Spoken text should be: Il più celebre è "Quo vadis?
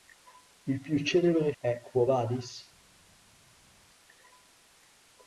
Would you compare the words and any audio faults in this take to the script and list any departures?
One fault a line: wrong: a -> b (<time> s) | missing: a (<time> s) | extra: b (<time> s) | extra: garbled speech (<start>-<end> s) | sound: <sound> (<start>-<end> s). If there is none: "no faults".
no faults